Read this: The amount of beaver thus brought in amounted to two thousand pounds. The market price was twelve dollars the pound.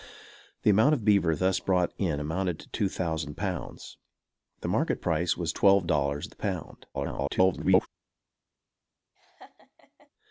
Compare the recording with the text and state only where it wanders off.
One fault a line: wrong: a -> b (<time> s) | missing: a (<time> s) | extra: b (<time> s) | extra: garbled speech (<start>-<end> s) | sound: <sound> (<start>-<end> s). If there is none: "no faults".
extra: garbled speech (6.9-7.9 s)
sound: laugh (9.2-10.1 s)